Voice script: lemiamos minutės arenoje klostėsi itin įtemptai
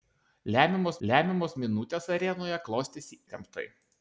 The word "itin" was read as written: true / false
false